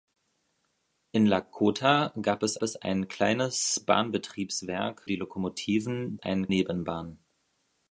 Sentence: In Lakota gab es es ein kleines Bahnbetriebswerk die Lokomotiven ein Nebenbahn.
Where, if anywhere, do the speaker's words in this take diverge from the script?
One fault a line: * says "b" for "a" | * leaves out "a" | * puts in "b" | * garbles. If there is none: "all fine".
all fine